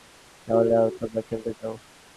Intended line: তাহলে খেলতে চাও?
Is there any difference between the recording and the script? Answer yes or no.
yes